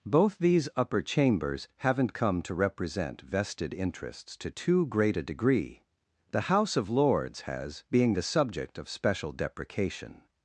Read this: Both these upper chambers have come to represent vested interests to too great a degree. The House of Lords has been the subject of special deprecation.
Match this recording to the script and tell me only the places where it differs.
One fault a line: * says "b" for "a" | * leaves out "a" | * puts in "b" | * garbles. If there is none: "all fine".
* says "haven't" for "have"
* says "being" for "been"